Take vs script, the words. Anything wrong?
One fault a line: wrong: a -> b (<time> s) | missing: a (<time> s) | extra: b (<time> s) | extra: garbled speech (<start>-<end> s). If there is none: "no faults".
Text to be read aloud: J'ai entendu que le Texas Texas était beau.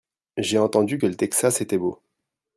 missing: Texas (1.6 s)